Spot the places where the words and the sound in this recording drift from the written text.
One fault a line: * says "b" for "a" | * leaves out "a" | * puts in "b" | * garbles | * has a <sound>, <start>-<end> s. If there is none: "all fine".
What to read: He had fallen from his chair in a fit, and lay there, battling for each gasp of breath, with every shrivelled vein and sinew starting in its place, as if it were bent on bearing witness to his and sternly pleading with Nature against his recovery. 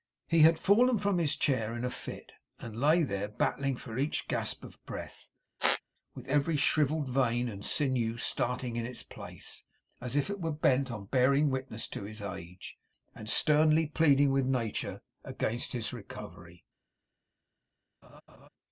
* has a squeak, 5.6-5.8 s
* puts in "age"
* has a laugh, 18.0-18.5 s